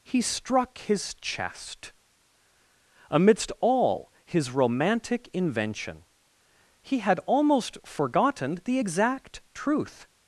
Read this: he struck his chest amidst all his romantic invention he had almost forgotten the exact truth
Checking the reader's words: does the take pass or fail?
pass